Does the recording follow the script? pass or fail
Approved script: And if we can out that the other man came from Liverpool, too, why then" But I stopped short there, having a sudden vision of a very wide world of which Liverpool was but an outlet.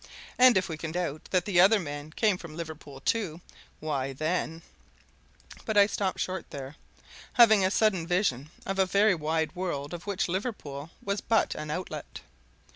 pass